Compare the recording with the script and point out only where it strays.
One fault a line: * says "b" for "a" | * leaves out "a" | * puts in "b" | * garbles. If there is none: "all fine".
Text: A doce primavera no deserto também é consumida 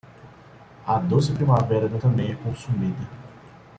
* leaves out "deserto"